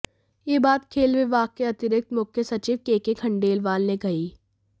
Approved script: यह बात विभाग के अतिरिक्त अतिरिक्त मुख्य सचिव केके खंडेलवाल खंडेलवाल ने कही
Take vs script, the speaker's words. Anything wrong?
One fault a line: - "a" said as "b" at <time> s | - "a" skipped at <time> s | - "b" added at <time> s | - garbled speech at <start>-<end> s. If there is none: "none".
- "खेल" added at 0.9 s
- "अतिरिक्त" skipped at 2.1 s
- "खंडेलवाल" skipped at 3.8 s